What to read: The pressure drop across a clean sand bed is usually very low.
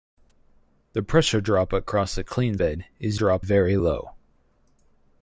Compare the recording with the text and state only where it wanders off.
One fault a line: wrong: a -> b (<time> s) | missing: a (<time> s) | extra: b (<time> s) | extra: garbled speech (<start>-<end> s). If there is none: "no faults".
missing: sand (2.6 s)
wrong: usually -> drop (3.1 s)